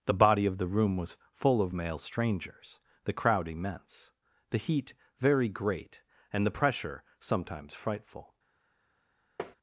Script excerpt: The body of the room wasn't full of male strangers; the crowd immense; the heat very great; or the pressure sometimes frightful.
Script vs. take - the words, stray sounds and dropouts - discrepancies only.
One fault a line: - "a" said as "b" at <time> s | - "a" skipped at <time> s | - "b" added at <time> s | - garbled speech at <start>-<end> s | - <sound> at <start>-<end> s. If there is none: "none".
- "wasn't" said as "was" at 1.0 s
- "or" said as "and" at 6.3 s
- tap at 9.4-9.6 s